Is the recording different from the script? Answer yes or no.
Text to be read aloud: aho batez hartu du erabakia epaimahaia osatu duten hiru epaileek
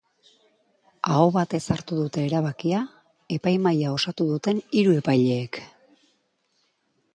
yes